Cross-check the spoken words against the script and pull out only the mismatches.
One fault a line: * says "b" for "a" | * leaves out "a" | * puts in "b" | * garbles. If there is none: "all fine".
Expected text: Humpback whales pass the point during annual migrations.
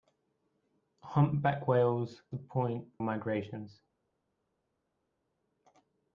* leaves out "pass"
* leaves out "during annual"